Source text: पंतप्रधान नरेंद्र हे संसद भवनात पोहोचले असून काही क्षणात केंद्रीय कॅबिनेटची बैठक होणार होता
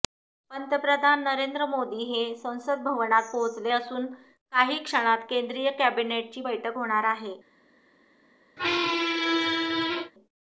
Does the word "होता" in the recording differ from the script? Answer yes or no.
yes